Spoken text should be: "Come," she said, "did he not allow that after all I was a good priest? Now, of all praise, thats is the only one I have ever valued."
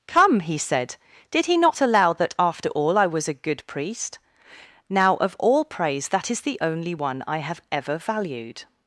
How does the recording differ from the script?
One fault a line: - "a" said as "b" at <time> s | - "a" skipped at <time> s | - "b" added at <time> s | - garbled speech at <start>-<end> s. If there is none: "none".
- "she" said as "he" at 0.4 s
- "thats" said as "that" at 6.1 s